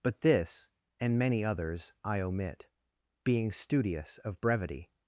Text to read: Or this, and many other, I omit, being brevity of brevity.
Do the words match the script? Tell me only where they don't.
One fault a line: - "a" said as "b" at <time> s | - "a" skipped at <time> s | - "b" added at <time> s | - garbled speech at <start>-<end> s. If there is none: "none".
- "Or" said as "But" at 0.0 s
- "other" said as "others" at 1.4 s
- "brevity" said as "studious" at 3.5 s